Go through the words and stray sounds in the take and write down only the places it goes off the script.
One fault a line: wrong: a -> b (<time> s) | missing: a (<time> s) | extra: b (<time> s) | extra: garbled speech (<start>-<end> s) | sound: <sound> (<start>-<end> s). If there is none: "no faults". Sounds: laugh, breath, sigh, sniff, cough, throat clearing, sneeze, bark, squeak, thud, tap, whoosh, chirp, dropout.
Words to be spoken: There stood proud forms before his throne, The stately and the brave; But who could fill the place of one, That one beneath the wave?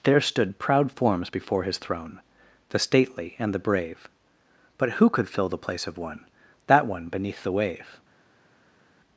no faults